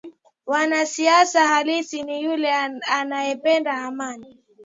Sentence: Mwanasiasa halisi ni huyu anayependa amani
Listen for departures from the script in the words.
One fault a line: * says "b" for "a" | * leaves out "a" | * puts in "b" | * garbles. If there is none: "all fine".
* says "yule" for "huyu"